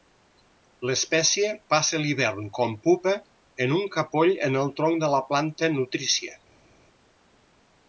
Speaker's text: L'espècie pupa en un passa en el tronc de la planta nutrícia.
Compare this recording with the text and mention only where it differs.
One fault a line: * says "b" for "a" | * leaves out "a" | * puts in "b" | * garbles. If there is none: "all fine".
* puts in "passa l'hivern com"
* says "capoll" for "passa"